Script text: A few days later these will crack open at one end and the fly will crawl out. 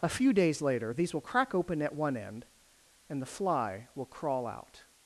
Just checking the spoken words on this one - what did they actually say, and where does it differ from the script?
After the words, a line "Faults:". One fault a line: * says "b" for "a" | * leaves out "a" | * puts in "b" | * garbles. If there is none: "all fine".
A few days later these will crack open at one end and the fly will crawl out.
Faults:
all fine